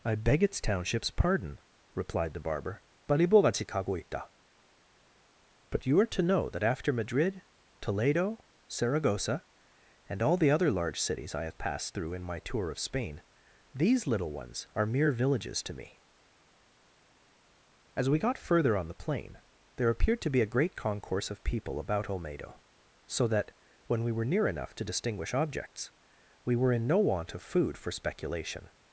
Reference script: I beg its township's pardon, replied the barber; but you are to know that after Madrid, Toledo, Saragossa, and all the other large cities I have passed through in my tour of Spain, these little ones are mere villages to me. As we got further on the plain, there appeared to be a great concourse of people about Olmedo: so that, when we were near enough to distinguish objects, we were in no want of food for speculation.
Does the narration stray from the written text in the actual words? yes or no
no